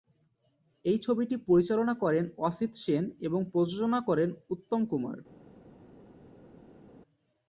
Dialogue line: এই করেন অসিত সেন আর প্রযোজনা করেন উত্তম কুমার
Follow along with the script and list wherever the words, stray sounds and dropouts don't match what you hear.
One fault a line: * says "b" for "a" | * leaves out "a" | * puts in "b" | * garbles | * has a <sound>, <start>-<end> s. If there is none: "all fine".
* puts in "ছবিটি পরিচালনা"
* says "এবং" for "আর"